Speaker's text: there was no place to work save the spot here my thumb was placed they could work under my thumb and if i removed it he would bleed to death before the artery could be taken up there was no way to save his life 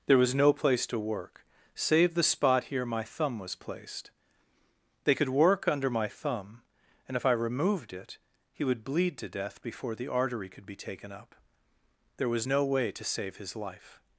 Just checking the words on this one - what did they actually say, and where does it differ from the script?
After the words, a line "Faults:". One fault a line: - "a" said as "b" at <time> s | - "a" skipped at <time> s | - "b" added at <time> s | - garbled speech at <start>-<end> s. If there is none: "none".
there was no place to work save the spot here my thumb was placed they could work under my thumb and if i removed it he would bleed to death before the artery could be taken up there was no way to save his life
Faults:
none